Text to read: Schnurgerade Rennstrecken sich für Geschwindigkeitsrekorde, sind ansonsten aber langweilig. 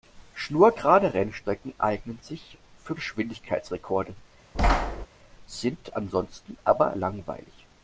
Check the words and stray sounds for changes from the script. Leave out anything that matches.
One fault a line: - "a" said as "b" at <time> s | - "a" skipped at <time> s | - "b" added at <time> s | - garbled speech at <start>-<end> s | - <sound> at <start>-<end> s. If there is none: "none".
- "eignen" added at 1.8 s
- thud at 4.5-5.1 s